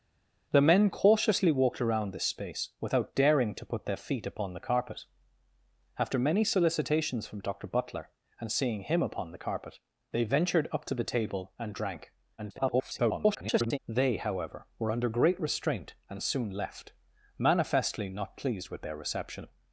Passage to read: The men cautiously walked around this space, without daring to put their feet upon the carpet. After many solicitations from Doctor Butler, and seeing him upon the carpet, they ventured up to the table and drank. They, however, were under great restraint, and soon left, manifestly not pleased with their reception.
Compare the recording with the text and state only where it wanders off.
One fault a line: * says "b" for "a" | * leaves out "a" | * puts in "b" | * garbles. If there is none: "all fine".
* garbles